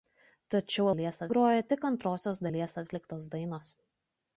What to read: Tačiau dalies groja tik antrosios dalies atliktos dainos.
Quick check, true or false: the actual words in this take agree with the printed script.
true